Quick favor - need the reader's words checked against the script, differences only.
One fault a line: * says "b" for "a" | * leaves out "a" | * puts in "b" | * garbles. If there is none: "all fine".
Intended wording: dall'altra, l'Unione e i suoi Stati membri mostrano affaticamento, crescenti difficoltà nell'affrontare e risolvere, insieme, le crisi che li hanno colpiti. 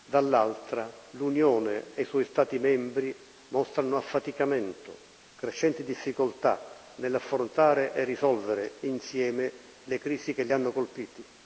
all fine